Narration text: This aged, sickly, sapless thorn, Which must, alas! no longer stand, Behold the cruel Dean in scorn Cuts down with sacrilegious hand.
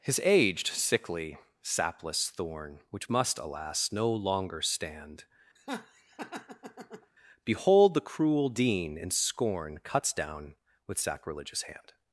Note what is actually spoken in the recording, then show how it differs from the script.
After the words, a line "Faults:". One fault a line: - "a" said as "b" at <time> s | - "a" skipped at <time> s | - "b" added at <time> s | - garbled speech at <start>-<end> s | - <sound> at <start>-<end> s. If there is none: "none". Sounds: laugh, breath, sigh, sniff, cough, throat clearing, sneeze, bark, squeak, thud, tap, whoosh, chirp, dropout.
His aged, sickly, sapless thorn, Which must, alas! no longer stand, Behold the cruel Dean in scorn Cuts down with sacrilegious hand.
Faults:
- "This" said as "His" at 0.0 s
- laugh at 5.6-7.1 s